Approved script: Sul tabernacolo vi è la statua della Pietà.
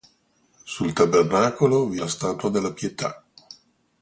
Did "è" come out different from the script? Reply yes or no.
yes